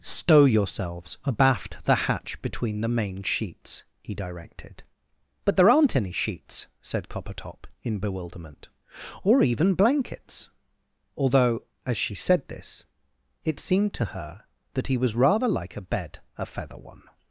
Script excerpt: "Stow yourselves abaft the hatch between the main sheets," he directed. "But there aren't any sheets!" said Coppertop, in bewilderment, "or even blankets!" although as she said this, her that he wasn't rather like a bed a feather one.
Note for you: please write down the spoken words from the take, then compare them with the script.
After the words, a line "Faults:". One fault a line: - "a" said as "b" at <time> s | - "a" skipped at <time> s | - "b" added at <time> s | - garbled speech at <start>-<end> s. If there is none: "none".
"Stow yourselves abaft the hatch between the main sheets," he directed. "But there aren't any sheets!" said Coppertop, in bewilderment, "or even blankets!" although as she said this, it seemed to her that he was rather like a bed a feather one.
Faults:
- "it seemed to" added at 13.4 s
- "wasn't" said as "was" at 15.0 s